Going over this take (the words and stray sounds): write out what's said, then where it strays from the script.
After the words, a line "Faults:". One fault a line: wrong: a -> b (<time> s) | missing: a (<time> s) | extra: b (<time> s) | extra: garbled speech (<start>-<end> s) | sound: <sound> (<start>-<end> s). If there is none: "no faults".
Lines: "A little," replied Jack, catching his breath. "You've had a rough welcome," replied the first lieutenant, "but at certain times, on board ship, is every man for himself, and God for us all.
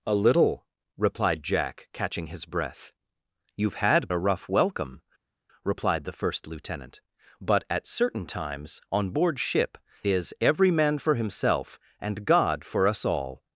"A little," replied Jack, catching his breath. "You've had a rough welcome," replied the first lieutenant, "but at certain times, on board ship, is every man for himself, and God for us all.
Faults:
no faults